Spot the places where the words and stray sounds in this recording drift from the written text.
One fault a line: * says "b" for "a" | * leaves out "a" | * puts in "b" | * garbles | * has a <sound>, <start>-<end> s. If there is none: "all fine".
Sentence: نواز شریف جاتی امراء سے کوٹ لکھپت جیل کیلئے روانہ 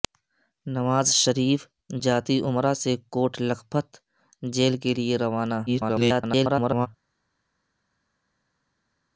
* garbles